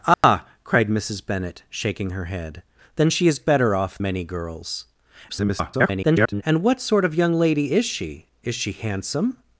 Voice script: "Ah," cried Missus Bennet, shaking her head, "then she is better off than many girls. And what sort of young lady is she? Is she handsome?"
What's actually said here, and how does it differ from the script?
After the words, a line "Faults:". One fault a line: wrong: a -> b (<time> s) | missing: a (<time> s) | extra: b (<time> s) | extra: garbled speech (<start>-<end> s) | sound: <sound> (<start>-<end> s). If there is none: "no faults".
"Ah," cried Missus Bennet, shaking her head, "then she is better off many girls. [garbled] And what sort of young lady is she? Is she handsome?"
Faults:
sound: dropout (0.1-0.2 s)
missing: than (4.0 s)
extra: garbled speech (5.3-6.4 s)